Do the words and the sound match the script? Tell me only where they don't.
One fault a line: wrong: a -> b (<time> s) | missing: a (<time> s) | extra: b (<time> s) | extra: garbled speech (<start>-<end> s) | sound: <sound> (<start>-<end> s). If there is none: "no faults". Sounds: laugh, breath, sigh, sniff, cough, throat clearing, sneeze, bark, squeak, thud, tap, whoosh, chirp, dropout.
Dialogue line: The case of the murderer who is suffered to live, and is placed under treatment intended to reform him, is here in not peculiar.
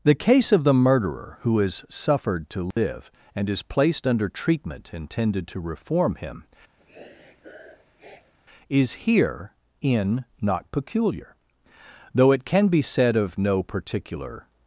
sound: dropout (2.7-2.8 s)
sound: sniff (6.8-8.3 s)
extra: Though it can be said of no particular (12.1 s)